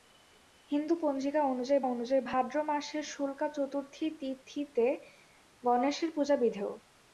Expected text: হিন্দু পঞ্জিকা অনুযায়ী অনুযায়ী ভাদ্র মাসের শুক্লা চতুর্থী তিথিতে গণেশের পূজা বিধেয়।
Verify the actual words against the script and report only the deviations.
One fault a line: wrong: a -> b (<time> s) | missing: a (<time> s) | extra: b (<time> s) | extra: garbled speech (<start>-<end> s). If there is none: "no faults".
no faults